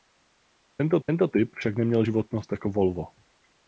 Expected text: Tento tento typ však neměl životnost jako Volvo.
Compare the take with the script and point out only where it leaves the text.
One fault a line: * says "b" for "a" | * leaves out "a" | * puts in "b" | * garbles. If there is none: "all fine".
all fine